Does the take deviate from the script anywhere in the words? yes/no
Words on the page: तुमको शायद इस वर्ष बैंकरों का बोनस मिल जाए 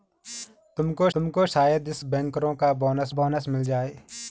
yes